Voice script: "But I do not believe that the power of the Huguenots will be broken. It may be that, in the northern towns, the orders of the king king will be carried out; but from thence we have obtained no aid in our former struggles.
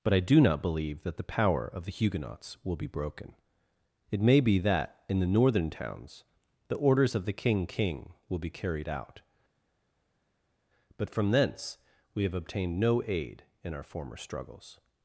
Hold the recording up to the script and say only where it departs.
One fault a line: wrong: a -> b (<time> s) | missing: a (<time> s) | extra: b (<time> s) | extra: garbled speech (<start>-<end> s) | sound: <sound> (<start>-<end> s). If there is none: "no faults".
no faults